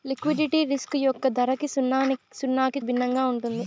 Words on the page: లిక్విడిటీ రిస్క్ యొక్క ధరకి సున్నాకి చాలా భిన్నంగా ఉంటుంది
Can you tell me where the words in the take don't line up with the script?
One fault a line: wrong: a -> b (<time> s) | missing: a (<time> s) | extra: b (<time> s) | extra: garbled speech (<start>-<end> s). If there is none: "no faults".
missing: చాలా (2.8 s)